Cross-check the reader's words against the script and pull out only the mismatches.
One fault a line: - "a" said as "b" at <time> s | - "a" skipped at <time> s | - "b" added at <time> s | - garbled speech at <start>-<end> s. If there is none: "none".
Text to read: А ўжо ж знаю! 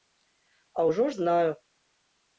none